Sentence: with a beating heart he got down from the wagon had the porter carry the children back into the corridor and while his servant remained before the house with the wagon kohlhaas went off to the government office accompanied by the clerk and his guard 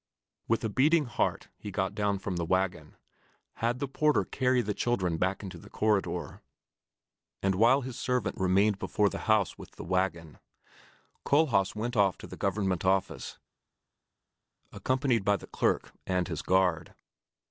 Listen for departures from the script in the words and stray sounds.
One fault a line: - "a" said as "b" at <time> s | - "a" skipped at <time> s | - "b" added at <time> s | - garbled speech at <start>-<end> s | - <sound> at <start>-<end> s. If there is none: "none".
none